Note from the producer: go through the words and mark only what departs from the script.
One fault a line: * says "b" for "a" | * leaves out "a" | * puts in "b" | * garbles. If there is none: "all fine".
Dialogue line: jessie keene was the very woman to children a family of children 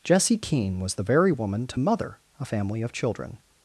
* says "mother" for "children"